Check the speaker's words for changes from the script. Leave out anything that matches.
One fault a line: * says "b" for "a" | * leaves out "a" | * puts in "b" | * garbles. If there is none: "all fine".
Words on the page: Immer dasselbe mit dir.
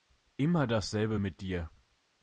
all fine